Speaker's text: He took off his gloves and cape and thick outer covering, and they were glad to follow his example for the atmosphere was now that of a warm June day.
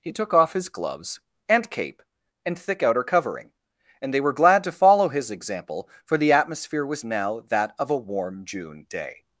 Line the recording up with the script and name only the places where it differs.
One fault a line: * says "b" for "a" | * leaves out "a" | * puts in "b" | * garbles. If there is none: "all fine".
all fine